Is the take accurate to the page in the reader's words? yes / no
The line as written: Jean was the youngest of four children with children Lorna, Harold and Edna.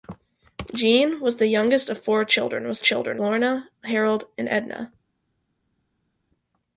yes